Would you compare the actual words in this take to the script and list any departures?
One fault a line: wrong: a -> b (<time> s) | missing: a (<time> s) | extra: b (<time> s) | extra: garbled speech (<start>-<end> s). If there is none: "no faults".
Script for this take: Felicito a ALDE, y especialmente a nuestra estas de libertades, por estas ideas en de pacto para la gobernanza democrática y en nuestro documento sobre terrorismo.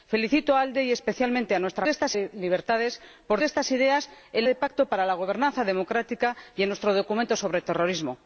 no faults